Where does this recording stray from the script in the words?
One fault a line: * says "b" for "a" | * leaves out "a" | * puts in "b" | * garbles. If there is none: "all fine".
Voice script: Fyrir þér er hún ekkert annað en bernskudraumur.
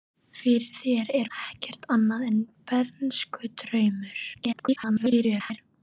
* leaves out "hún"
* garbles